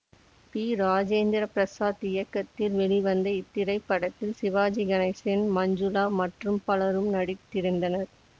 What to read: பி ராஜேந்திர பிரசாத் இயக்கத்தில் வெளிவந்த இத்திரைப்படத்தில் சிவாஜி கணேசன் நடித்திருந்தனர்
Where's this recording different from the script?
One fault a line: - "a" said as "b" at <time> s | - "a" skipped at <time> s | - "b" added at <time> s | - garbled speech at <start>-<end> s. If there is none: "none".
- "மஞ்சுளா மற்றும் பலரும்" added at 5.5 s